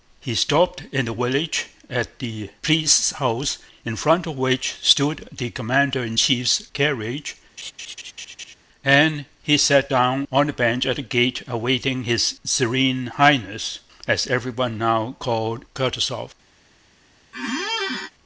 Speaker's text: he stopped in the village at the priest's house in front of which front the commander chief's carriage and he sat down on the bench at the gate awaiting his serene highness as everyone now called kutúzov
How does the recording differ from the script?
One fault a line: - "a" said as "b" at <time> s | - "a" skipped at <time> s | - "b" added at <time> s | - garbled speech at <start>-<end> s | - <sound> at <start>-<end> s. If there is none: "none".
- "front" said as "stood" at 4.8 s
- "in" added at 6.0 s
- laugh at 7.6-8.6 s
- squeak at 17.3-18.1 s